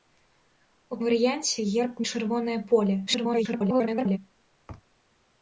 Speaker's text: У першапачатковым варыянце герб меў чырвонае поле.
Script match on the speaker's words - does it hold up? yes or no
no